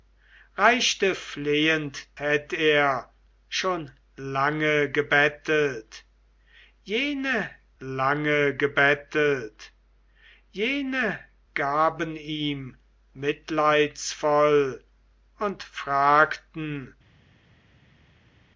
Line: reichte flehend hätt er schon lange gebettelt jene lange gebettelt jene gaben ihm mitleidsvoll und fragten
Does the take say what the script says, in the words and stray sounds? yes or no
yes